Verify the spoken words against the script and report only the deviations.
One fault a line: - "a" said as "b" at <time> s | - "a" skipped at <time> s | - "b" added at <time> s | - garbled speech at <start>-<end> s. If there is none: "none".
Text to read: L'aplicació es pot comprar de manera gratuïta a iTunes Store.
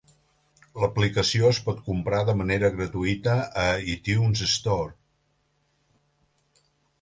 none